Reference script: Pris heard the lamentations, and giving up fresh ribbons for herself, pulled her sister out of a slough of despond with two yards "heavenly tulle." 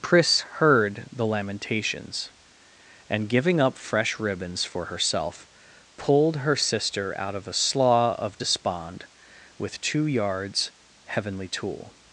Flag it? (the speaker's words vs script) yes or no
no